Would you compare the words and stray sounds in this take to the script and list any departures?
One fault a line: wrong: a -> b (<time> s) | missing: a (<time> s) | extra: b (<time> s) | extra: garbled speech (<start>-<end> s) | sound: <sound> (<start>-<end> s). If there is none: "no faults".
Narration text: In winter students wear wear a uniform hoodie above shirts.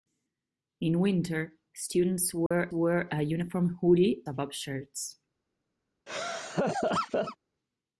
sound: dropout (2.5-2.5 s)
sound: laugh (6.1-7.4 s)